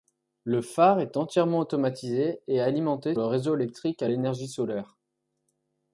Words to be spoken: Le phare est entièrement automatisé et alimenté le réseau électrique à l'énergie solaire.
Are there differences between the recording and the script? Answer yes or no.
no